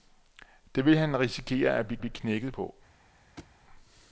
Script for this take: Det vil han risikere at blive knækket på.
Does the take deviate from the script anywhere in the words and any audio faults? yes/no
yes